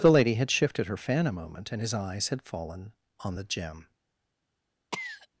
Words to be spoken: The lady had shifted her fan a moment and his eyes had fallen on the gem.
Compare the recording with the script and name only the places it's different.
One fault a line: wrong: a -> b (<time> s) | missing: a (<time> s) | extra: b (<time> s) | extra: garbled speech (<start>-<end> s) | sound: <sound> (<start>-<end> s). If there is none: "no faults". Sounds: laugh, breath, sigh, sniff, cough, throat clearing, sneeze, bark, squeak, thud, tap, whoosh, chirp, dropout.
sound: cough (4.9-5.3 s)